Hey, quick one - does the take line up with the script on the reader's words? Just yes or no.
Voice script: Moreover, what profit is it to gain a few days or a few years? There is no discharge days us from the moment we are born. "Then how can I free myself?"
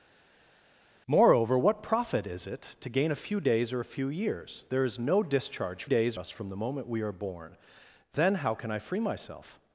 yes